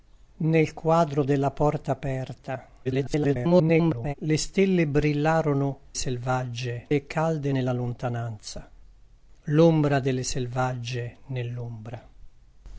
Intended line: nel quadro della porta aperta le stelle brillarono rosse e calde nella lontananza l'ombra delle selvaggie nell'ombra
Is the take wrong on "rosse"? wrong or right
wrong